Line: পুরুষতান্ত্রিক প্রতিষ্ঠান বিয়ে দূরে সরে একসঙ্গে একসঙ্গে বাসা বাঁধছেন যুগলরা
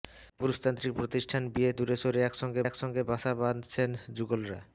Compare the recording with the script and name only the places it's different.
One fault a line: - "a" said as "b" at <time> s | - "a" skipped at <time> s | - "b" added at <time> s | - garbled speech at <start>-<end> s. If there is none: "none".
none